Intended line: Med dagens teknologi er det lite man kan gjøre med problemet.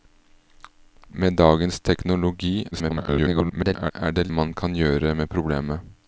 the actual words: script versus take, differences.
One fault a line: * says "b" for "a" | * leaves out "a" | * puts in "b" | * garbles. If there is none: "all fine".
* garbles
* leaves out "lite"